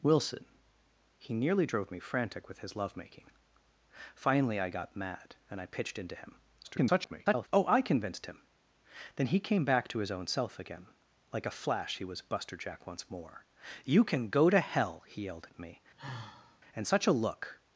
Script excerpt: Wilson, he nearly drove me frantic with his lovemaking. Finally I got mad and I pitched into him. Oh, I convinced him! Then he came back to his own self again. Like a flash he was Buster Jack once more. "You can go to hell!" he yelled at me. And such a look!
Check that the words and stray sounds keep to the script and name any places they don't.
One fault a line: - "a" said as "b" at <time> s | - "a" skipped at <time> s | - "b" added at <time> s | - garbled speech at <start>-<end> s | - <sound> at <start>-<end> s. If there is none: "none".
- garbled speech at 6.6-7.5 s
- sigh at 16.0-16.6 s